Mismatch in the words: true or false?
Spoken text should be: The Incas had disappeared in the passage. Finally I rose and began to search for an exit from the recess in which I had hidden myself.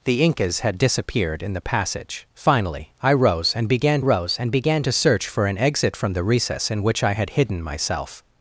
true